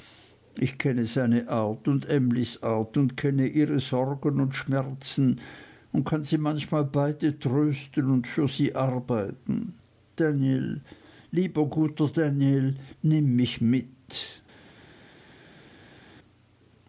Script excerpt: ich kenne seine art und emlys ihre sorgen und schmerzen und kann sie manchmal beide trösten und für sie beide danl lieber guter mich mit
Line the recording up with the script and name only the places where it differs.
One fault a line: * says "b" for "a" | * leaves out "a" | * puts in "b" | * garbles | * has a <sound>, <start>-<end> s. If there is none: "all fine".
* puts in "art und kenne"
* says "arbeiten" for "beide"
* puts in "danl nimm"